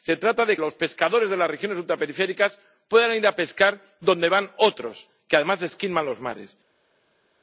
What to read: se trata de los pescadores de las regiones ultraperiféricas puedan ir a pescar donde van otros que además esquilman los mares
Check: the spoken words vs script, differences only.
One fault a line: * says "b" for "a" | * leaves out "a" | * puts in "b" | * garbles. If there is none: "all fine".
all fine